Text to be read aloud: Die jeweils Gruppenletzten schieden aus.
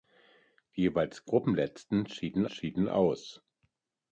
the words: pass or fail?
fail